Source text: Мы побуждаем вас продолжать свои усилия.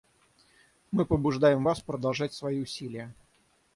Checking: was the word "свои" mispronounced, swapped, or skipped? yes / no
no